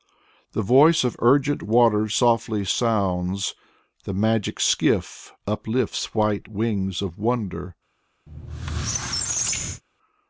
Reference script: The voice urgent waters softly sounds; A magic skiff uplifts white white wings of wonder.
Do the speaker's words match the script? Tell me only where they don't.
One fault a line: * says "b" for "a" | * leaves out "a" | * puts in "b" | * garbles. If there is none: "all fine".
* puts in "of"
* says "The" for "A"
* leaves out "white"